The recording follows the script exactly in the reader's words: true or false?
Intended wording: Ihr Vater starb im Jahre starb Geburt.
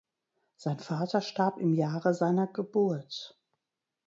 false